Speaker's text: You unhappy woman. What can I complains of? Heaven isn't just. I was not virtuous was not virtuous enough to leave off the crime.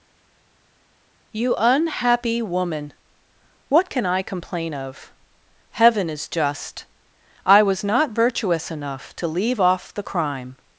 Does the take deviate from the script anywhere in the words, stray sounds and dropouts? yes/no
yes